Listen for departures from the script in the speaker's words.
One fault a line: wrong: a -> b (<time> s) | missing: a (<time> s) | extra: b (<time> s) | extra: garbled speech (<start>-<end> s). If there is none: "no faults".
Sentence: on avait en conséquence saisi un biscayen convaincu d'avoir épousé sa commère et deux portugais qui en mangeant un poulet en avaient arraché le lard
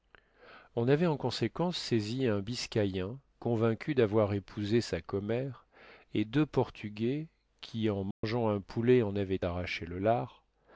no faults